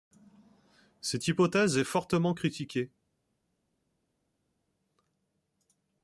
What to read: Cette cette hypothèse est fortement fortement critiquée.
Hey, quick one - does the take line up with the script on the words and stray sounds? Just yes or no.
no